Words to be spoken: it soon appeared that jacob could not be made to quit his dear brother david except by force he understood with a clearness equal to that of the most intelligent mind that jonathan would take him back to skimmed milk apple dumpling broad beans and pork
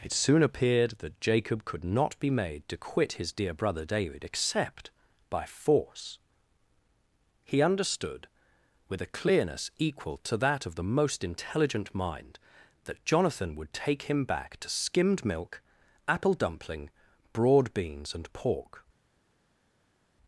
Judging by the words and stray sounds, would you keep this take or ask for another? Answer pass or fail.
pass